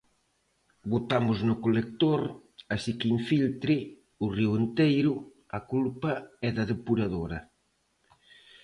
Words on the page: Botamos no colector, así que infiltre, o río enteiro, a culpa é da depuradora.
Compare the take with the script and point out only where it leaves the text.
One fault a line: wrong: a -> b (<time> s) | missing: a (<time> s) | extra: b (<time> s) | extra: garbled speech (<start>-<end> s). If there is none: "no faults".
no faults